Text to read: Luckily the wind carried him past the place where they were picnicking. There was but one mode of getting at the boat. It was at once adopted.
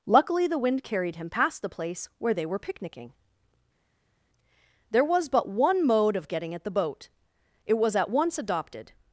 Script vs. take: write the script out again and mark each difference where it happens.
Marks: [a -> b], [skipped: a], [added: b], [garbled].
Luckily the wind carried him past the place where they were picnicking. There was but one mode of getting at the boat. It was at once adopted.